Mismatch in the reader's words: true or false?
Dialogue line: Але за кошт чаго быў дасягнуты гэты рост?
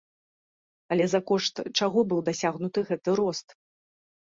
false